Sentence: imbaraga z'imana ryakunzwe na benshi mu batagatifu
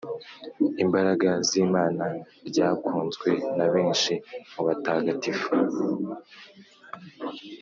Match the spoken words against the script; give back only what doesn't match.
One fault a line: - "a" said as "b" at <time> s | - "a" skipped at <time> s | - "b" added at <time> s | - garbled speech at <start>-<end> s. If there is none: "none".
none